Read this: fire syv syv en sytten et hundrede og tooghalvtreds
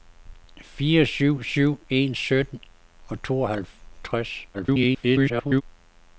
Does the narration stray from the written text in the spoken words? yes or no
yes